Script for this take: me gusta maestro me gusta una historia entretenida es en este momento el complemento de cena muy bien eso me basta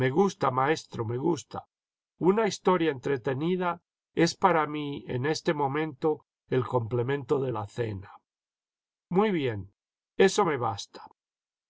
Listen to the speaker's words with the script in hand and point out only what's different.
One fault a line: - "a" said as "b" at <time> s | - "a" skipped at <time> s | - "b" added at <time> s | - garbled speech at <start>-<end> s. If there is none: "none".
- "para mí" added at 4.3 s
- "la" added at 7.5 s